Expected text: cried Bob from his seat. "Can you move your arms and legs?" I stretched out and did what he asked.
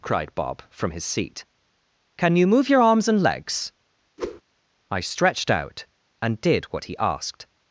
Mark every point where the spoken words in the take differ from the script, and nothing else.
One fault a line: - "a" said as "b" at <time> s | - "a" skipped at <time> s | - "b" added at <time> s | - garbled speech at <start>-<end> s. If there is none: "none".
none